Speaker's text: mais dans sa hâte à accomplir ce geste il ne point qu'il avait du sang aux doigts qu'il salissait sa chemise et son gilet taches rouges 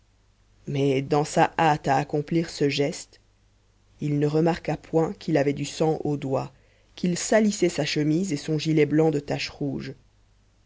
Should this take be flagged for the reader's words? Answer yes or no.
yes